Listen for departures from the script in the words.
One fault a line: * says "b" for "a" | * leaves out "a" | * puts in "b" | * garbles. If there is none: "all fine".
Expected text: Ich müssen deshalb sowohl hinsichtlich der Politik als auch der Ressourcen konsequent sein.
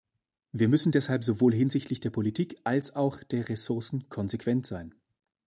* says "Wir" for "Ich"